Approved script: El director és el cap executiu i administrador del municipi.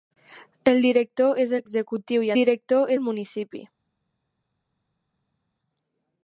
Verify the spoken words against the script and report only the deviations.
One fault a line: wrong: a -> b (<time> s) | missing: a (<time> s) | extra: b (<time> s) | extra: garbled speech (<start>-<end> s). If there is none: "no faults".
missing: cap (1.7 s)
wrong: administrador -> director (2.4 s)